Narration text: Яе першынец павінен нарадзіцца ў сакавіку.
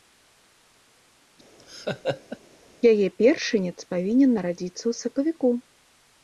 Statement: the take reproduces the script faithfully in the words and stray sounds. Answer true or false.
false